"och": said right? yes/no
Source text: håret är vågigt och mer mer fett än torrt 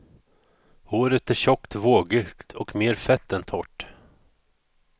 yes